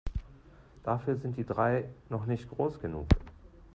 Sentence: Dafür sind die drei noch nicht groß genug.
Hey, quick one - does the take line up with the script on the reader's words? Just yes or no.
yes